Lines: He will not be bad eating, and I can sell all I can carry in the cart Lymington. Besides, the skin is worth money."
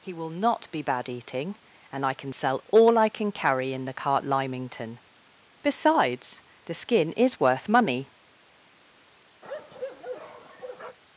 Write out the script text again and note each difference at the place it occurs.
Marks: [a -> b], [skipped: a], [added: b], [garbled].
He will not be bad eating, and I can sell all I can carry in the cart Lymington. Besides, the skin is worth money."